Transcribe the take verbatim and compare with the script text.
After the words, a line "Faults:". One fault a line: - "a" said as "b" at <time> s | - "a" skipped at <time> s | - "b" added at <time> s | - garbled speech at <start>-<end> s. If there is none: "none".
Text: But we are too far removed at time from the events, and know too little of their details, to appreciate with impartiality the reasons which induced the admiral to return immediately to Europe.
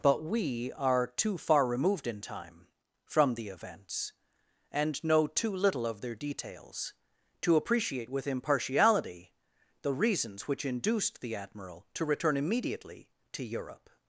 But we are too far removed in time from the events, and know too little of their details, to appreciate with impartiality the reasons which induced the admiral to return immediately to Europe.
Faults:
- "at" said as "in" at 2.1 s